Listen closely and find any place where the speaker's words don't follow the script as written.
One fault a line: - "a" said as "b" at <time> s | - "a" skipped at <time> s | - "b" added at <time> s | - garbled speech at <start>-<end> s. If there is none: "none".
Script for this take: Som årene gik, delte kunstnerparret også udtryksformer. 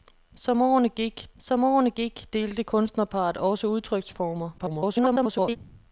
- "som årene gik" added at 1.4 s
- garbled speech at 4.6-5.6 s